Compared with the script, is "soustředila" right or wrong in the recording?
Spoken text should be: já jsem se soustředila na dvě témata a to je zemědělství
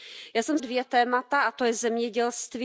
wrong